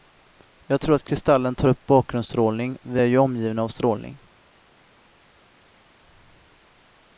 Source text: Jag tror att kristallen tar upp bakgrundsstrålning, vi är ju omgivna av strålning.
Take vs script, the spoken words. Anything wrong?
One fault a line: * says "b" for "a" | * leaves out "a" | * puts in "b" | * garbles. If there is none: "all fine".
all fine